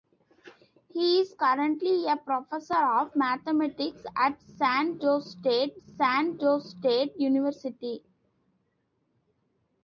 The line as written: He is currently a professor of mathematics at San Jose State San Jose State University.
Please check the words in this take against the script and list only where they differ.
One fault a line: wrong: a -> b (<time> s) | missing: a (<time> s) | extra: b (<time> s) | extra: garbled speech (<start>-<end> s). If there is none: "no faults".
no faults